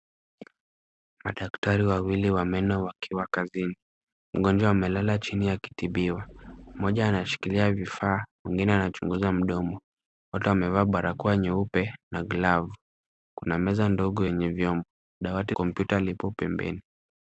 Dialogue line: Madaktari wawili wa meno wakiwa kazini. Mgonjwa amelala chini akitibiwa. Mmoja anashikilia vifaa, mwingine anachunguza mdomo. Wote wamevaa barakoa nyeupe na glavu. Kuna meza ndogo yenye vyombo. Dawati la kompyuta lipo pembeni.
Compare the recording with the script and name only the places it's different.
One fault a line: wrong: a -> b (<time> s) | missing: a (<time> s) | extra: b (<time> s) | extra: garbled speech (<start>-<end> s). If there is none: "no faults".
missing: la (15.5 s)